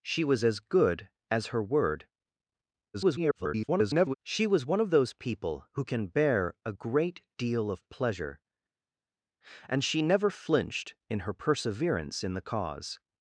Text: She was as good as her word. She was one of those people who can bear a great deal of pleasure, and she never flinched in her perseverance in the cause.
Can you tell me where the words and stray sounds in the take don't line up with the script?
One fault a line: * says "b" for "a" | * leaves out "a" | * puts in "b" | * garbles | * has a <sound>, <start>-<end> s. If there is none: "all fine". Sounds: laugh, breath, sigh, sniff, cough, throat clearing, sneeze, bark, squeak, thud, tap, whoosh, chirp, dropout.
* garbles